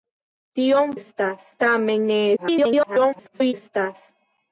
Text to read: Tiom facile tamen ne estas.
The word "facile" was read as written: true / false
false